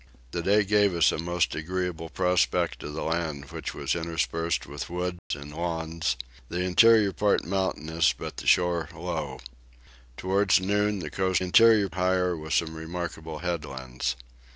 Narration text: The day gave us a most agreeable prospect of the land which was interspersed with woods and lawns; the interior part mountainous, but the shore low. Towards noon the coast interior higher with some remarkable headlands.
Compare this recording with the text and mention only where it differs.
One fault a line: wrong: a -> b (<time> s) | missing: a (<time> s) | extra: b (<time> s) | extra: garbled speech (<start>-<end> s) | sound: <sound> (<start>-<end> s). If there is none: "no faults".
sound: dropout (5.2-5.3 s)